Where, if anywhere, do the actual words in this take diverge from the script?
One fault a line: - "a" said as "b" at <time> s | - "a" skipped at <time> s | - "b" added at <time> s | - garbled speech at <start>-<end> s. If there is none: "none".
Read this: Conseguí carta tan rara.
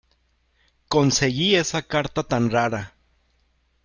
- "esa" added at 1.6 s